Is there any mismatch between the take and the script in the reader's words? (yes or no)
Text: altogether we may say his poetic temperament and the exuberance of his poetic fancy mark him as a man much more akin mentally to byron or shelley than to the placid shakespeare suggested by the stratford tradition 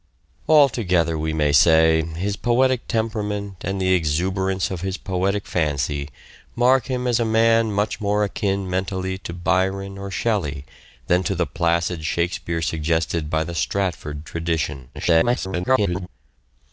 yes